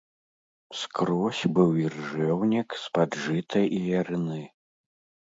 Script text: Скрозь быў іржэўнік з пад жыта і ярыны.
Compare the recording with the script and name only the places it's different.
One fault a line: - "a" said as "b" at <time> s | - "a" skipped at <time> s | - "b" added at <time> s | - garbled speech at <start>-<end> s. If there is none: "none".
none